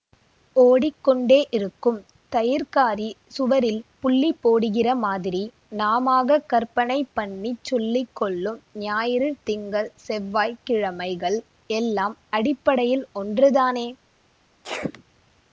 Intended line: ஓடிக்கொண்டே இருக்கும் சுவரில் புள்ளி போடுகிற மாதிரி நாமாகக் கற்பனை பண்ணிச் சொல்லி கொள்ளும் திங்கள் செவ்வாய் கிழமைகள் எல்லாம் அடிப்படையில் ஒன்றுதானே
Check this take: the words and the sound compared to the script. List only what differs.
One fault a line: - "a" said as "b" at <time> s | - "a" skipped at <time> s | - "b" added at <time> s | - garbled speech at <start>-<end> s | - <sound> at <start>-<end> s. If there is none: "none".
- "தயிர்க்காரி" added at 2.3 s
- "ஞாயிறு" added at 8.8 s
- sneeze at 14.6-15.0 s